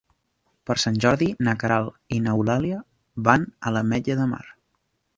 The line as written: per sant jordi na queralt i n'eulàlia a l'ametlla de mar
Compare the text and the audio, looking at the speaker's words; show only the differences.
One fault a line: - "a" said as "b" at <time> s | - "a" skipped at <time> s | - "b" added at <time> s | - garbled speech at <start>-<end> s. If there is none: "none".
- "van" added at 3.3 s